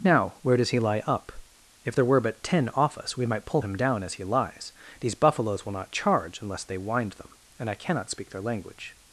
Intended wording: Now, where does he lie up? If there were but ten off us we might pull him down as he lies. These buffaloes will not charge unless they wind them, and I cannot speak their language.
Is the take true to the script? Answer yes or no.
yes